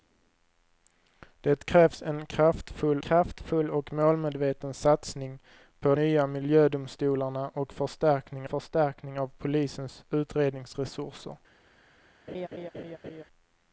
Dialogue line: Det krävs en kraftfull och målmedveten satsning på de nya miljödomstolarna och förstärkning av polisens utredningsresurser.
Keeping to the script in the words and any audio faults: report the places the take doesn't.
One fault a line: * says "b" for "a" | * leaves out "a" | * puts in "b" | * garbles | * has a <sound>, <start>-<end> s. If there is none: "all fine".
* puts in "kraftfull"
* leaves out "de"
* puts in "förstärkning"
* has a laugh, 12.3-13.2 s